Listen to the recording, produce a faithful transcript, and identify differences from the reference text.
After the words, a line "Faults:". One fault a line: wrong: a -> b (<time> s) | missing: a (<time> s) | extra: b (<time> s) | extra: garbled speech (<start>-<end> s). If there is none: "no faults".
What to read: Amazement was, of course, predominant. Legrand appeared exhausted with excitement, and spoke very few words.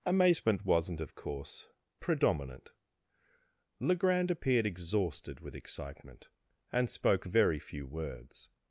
Amazement wasn't, of course, predominant. Legrand appeared exhausted with excitement, and spoke very few words.
Faults:
wrong: was -> wasn't (0.7 s)